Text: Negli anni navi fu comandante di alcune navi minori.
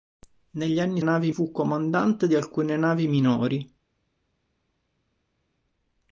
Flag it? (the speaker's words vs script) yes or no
no